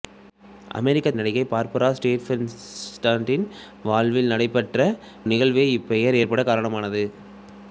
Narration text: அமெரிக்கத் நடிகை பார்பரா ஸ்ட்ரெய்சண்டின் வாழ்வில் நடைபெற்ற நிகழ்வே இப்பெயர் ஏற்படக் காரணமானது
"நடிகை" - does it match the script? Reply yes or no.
yes